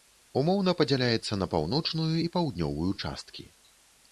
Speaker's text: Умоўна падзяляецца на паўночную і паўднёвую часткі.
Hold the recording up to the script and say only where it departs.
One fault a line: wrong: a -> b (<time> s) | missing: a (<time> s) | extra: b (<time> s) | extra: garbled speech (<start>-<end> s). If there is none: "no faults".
no faults